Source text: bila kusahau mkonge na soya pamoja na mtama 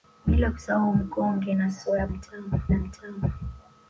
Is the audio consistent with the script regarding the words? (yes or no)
no